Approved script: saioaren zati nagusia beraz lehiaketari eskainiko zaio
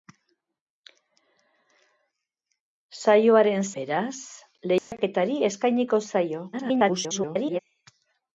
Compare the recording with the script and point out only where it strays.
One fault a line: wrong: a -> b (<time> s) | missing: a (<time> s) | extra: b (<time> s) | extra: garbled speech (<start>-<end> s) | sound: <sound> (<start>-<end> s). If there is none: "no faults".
missing: zati nagusia (3.7 s)
sound: dropout (4.8-4.9 s)
extra: garbled speech (6.5-7.6 s)